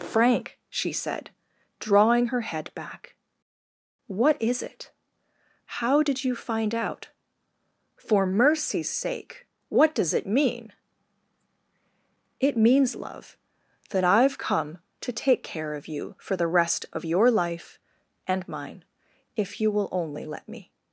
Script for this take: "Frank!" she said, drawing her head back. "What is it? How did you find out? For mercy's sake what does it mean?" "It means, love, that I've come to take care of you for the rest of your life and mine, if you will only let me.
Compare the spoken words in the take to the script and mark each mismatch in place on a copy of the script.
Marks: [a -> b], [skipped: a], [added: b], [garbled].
"Frank!" she said, drawing her head back. "What is it? How did you find out? For mercy's sake what does it mean?" "It means, love, that I've come to take care of you for the rest of your life and mine, if you will only let me.